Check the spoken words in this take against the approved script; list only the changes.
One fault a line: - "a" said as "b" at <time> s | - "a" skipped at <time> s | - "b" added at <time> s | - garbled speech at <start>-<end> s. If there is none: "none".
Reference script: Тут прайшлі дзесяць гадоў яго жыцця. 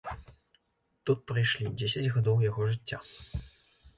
none